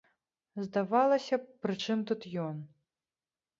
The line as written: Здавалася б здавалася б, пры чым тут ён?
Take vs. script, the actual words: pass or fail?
fail